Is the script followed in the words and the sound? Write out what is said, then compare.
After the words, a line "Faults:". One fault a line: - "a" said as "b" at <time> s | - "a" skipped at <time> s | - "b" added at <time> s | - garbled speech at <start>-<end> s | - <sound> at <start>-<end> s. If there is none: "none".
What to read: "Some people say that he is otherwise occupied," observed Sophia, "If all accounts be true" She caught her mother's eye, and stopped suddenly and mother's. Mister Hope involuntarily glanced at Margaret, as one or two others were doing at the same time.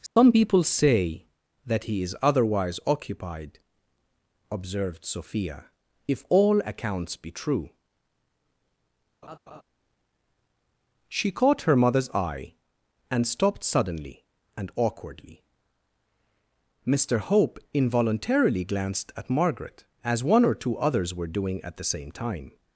"Some people say that he is otherwise occupied," observed Sophia, "If all accounts be true" She caught her mother's eye, and stopped suddenly and awkwardly. Mister Hope involuntarily glanced at Margaret, as one or two others were doing at the same time.
Faults:
- dropout at 0.1-0.2 s
- laugh at 9.2-9.6 s
- "mother's" said as "awkwardly" at 14.8 s